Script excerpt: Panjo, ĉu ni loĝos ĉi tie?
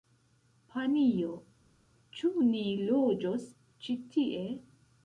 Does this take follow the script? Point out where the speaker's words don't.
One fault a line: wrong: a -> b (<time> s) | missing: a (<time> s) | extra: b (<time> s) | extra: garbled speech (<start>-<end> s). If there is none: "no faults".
no faults